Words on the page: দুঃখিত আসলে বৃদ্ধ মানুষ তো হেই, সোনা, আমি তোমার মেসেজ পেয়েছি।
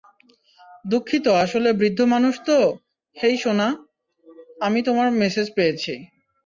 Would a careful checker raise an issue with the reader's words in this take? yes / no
no